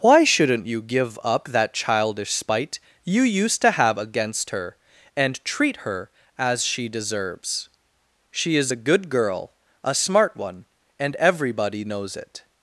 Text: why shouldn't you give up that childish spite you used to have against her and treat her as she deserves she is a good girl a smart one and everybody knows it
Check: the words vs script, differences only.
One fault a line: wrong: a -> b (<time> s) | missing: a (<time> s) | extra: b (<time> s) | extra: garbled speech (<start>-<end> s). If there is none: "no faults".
no faults